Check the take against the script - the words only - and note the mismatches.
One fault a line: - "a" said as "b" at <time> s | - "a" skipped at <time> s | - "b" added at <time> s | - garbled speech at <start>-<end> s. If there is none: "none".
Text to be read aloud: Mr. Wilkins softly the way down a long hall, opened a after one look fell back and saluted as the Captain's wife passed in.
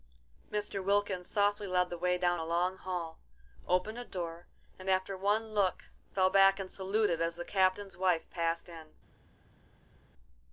- "led" added at 1.7 s
- "door and" added at 4.0 s